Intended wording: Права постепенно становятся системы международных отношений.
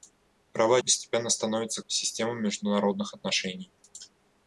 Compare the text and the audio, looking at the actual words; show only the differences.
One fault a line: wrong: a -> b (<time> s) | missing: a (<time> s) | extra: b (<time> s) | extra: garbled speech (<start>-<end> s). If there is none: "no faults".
no faults